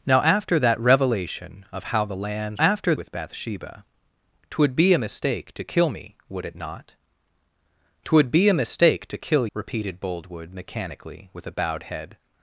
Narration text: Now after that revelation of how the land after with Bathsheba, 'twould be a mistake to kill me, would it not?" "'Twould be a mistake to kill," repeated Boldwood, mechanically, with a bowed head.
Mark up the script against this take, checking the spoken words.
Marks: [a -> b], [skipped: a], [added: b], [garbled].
Now after that revelation of how the land after with Bathsheba, 'twould be a mistake to kill me, would it not?" "'Twould be a mistake to kill," repeated Boldwood, mechanically, with a bowed head.